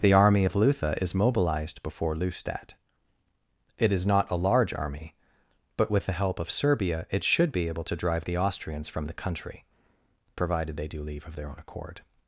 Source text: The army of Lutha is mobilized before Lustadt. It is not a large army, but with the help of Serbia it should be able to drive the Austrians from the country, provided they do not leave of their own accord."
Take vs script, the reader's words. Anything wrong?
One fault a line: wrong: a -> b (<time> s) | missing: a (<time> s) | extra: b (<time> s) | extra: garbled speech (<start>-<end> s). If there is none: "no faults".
missing: not (11.0 s)